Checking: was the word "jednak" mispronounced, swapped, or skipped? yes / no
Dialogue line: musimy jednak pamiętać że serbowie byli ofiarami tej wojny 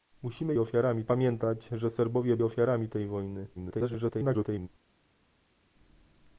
yes